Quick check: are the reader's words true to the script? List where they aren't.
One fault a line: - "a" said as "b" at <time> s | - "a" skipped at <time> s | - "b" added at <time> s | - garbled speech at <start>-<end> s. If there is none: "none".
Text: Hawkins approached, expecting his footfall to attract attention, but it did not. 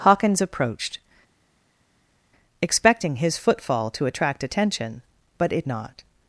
- "did" skipped at 5.7 s